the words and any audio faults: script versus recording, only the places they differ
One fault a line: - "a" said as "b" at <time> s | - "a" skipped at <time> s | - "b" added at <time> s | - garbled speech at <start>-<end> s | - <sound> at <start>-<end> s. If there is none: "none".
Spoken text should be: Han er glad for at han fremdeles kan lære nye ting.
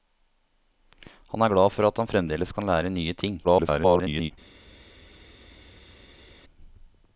- garbled speech at 3.4-4.3 s